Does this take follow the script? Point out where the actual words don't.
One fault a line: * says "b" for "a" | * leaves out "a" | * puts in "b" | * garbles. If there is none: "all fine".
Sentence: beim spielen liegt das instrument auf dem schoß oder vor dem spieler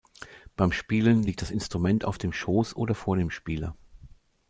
all fine